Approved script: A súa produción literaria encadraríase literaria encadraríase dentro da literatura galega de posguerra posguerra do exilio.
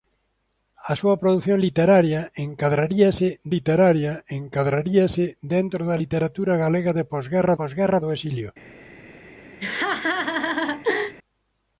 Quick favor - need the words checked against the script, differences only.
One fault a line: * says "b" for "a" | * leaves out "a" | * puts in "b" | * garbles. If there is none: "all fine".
all fine